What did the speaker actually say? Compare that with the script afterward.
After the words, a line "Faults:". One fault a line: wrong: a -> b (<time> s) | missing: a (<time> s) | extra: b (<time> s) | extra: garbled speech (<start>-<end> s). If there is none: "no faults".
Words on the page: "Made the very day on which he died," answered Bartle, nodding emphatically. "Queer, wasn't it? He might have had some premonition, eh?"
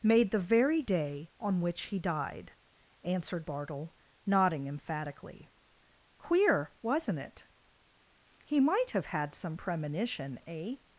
"Made the very day on which he died," answered Bartle, nodding emphatically. "Queer, wasn't it? He might have had some premonition, eh?"
Faults:
no faults